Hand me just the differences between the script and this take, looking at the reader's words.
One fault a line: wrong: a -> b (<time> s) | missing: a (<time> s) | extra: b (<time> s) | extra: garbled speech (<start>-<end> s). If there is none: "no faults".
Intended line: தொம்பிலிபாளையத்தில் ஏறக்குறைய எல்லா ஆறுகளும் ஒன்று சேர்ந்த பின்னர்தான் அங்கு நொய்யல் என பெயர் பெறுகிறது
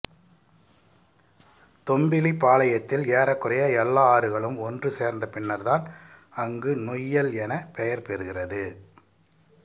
no faults